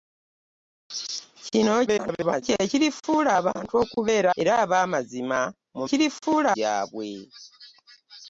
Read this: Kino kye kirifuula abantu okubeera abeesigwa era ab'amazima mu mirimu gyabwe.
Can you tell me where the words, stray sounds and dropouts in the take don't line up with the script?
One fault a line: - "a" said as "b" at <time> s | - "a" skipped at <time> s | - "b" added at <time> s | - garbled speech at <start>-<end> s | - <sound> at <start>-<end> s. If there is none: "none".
- garbled speech at 1.9-2.4 s
- "abeesigwa" skipped at 4.3 s
- "mirimu" said as "kirifuula" at 5.9 s